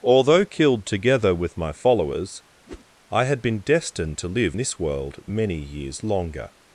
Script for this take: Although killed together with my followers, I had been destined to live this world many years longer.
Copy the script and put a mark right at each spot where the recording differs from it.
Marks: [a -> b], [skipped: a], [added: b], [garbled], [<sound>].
Although killed together with my followers, [whoosh] I had been destined to live this world many years longer.